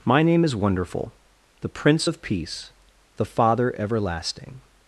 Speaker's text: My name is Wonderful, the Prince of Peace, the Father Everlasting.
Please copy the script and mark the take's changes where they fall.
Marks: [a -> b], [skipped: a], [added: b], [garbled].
My name is Wonderful, the Prince of Peace, the Father Everlasting.